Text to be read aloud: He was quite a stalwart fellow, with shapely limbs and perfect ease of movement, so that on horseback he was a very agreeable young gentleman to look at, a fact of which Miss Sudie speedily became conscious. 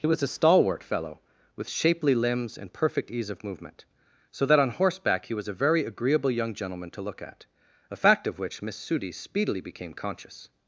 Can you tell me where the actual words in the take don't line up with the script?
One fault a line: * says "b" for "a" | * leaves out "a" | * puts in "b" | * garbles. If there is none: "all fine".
* leaves out "quite"